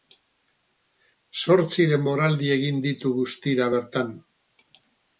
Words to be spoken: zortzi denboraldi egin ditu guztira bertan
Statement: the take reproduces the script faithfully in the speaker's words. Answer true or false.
true